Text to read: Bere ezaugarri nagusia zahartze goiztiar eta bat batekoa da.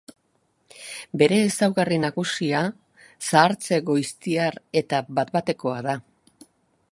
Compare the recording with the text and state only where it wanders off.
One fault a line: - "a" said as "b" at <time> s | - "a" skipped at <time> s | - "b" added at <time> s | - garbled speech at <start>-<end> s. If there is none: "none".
none